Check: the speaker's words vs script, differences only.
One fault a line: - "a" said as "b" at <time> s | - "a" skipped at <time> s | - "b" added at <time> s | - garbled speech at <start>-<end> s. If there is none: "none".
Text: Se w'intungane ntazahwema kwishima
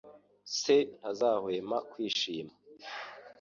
- "w'intungane" skipped at 0.8 s